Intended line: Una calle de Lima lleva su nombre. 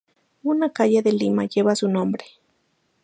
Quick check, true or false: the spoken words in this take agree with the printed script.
true